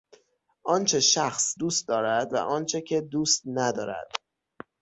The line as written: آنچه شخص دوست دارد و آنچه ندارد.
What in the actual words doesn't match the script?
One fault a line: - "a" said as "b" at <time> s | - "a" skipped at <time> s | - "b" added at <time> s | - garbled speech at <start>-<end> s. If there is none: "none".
- "که دوست" added at 2.8 s